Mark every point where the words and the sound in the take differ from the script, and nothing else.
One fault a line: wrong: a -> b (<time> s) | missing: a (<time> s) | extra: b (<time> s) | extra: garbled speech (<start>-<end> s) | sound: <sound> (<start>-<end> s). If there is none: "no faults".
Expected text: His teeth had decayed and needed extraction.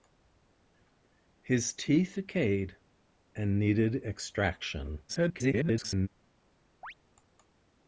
missing: had (2.2 s)
extra: garbled speech (5.1-6.1 s)
sound: chirp (6.8-6.9 s)